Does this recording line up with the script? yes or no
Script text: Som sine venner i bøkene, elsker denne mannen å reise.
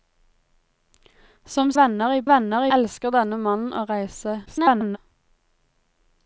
no